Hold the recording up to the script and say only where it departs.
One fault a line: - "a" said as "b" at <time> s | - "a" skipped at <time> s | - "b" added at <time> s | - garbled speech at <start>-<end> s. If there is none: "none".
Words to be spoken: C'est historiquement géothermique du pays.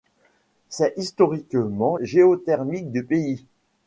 none